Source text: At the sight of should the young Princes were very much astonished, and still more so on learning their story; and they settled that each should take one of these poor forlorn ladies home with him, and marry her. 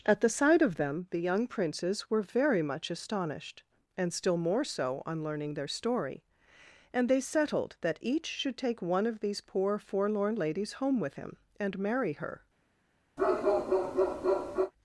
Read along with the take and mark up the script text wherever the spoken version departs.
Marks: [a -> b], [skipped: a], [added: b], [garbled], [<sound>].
At the sight of [should -> them] the young Princes were very much astonished, and still more so on learning their story; and they settled that each should take one of these poor forlorn ladies home with him, and marry her. [bark]